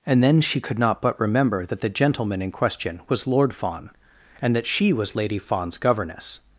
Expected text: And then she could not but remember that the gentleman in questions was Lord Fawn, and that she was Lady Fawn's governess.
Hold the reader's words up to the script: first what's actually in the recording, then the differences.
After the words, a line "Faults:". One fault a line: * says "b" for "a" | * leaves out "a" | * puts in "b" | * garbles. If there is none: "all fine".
And then she could not but remember that the gentleman in question was Lord Fawn, and that she was Lady Fawn's governess.
Faults:
* says "question" for "questions"